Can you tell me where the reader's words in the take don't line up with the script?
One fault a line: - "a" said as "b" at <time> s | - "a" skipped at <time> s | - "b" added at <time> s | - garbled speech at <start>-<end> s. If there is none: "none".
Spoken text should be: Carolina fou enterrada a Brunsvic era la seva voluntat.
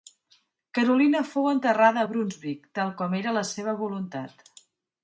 - "tal com" added at 2.8 s